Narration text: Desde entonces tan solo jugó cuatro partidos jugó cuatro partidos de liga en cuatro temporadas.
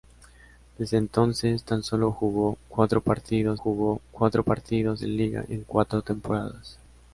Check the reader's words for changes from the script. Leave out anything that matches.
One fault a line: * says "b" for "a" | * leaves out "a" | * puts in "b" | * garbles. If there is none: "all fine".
all fine